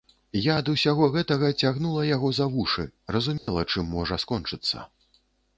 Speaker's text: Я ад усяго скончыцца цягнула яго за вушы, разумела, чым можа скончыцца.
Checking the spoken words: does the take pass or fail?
fail